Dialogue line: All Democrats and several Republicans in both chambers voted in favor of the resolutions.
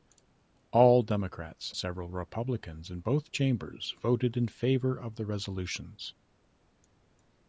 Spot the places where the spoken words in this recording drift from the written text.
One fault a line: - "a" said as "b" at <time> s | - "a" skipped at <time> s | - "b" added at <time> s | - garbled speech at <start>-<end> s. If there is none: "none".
- "and" skipped at 1.8 s